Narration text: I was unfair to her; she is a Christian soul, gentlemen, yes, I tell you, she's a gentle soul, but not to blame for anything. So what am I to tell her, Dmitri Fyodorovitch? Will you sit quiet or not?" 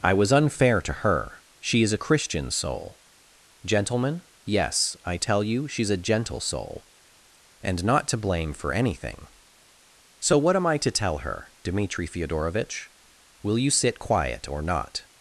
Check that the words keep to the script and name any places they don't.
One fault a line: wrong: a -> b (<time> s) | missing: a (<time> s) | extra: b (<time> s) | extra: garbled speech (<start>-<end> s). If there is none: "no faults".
wrong: but -> and (7.6 s)